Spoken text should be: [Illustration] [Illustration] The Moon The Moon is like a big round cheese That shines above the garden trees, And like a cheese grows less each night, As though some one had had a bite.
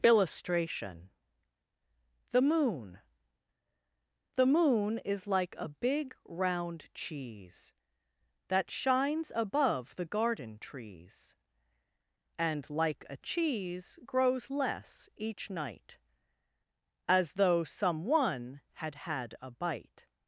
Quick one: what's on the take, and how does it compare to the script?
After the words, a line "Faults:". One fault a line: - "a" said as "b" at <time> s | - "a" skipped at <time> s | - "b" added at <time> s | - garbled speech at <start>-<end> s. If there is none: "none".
[Illustration] The Moon The Moon is like a big round cheese That shines above the garden trees, And like a cheese grows less each night, As though some one had had a bite.
Faults:
- "Illustration" skipped at 1.1 s